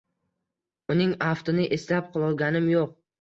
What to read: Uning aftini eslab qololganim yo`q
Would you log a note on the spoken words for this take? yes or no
no